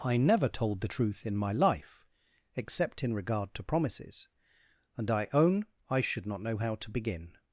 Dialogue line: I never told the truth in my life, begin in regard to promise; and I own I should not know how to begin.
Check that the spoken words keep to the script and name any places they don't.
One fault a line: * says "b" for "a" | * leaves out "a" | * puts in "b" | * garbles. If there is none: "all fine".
* says "except" for "begin"
* says "promises" for "promise"